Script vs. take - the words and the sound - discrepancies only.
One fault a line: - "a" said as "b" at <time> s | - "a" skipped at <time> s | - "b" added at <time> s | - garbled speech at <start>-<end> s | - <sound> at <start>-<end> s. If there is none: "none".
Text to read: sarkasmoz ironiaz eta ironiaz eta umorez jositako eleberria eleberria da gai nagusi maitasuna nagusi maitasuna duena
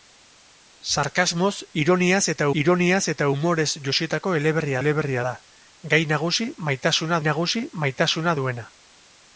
none